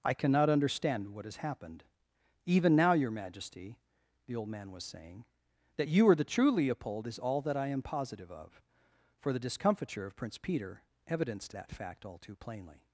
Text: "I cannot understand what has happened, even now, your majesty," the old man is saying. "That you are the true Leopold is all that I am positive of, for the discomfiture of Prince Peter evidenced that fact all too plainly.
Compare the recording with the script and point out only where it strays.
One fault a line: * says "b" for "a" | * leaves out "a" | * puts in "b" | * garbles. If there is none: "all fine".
* says "was" for "is"